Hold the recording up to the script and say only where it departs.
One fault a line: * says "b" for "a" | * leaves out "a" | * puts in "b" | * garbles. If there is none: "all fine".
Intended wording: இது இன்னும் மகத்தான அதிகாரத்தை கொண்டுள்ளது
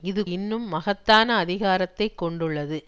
all fine